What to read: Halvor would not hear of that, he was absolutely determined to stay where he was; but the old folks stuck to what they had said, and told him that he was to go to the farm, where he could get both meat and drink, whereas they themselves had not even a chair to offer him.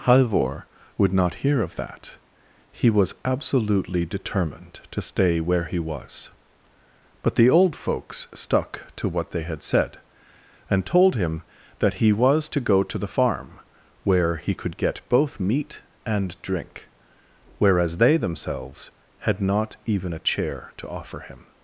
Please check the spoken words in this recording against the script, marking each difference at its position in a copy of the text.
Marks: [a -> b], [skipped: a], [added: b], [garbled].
Halvor would not hear of that, he was absolutely determined to stay where he was; but the old folks stuck to what they had said, and told him that he was to go to the farm, where he could get both meat and drink, whereas they themselves had not even a chair to offer him.